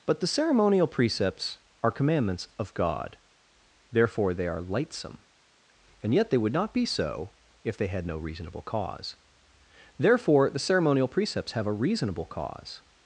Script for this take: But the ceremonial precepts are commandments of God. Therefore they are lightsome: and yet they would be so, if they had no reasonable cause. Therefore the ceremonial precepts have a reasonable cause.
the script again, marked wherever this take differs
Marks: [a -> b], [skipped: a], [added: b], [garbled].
But the ceremonial precepts are commandments of God. Therefore they are lightsome: and yet they would [added: not] be so, if they had no reasonable cause. Therefore the ceremonial precepts have a reasonable cause.